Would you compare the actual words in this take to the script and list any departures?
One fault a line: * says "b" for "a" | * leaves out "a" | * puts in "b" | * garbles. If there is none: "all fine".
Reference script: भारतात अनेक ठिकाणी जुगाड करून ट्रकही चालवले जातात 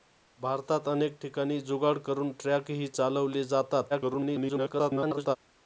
* garbles